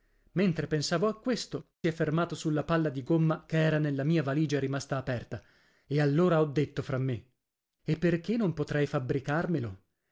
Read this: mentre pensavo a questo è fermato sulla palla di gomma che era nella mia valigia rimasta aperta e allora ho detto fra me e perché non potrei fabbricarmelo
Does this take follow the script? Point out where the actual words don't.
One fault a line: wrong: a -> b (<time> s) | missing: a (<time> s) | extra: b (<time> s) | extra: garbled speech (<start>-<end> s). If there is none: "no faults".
no faults